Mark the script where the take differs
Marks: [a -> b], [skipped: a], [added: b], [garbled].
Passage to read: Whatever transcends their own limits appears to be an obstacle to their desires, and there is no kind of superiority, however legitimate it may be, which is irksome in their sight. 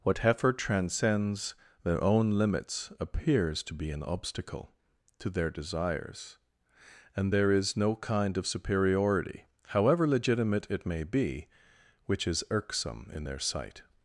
Whatever transcends their own limits appears to be an obstacle to their desires, and there is no kind of superiority, however legitimate it may be, which is irksome in their sight.